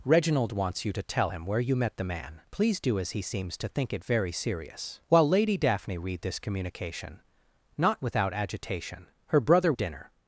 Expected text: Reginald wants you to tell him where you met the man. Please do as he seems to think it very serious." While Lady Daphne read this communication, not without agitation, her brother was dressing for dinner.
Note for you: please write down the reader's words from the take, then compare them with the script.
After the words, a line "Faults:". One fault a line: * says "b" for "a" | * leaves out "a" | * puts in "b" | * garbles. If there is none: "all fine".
Reginald wants you to tell him where you met the man. Please do as he seems to think it very serious." While Lady Daphne read this communication, not without agitation, her brother dinner.
Faults:
* leaves out "was dressing for"